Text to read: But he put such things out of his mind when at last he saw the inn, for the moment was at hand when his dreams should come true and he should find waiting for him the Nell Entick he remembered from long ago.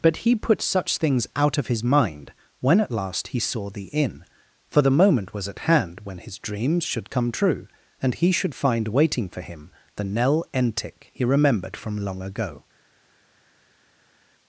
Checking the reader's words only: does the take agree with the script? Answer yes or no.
yes